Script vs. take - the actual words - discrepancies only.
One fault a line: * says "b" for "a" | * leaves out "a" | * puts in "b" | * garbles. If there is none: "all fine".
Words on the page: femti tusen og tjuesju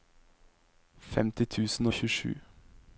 all fine